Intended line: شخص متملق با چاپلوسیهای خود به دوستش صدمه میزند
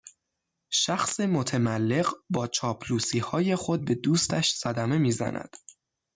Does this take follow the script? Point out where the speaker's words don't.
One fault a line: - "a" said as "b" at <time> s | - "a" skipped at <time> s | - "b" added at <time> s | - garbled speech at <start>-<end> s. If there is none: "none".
none